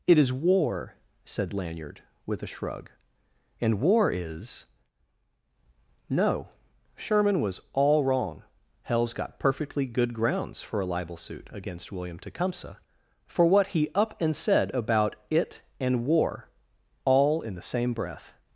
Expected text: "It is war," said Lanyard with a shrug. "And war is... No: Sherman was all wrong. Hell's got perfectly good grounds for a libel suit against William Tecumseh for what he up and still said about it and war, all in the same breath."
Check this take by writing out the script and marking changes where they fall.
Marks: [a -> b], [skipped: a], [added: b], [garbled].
"It is war," said Lanyard with a shrug. "And war is... No: Sherman was all wrong. Hell's got perfectly good grounds for a libel suit against William Tecumseh for what he up and [skipped: still] said about it and war, all in the same breath."